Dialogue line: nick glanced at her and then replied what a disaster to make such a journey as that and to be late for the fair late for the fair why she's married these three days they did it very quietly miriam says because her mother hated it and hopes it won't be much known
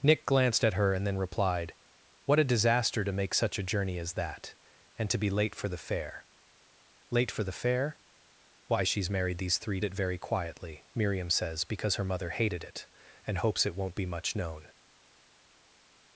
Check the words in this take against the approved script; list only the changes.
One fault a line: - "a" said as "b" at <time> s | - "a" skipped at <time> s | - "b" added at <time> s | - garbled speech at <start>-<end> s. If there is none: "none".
- "days they did" skipped at 9.8 s